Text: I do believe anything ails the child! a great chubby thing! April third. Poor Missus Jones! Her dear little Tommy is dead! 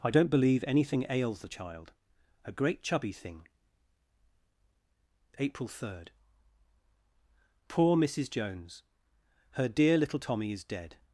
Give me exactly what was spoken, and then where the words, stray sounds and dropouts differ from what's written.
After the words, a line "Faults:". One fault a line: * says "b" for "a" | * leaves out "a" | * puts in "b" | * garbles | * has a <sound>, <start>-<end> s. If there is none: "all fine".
I don't believe anything ails the child! a great chubby thing! April third. Poor Missus Jones! Her dear little Tommy is dead!
Faults:
* says "don't" for "do"